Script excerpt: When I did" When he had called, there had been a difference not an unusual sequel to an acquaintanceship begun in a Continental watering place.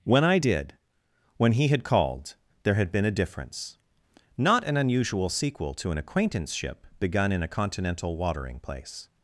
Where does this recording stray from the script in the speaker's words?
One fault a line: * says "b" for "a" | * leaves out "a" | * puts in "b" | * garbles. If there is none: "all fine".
all fine